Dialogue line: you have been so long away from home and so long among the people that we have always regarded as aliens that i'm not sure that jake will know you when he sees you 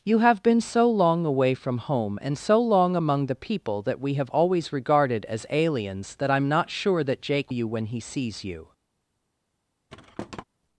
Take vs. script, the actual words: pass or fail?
fail